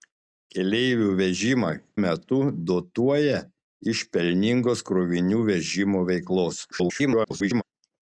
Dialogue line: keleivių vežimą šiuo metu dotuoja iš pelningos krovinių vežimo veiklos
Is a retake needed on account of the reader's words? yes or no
yes